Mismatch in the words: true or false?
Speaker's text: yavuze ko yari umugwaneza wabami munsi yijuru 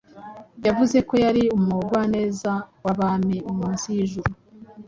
false